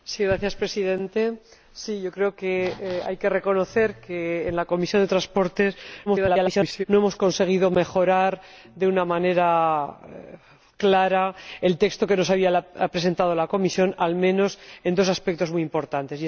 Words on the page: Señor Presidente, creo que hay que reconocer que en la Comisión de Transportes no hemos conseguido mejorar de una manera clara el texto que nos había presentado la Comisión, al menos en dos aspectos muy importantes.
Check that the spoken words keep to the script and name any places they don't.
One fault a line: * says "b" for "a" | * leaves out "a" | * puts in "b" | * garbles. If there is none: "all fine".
* garbles